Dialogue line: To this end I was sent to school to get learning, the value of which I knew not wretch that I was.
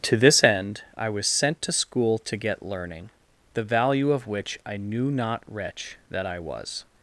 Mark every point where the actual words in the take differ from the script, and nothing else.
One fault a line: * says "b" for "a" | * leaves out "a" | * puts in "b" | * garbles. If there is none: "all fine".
all fine